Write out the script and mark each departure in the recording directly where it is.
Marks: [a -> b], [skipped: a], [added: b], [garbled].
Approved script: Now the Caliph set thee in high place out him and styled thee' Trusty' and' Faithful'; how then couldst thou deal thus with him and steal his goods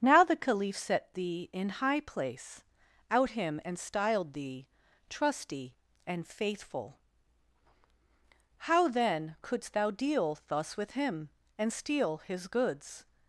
Now the Caliph set thee in high place out him and styled thee' Trusty' and' Faithful'; how then couldst thou deal thus with him and steal his goods